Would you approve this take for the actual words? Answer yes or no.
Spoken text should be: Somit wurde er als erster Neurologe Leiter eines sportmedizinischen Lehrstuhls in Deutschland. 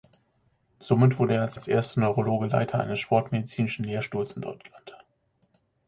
no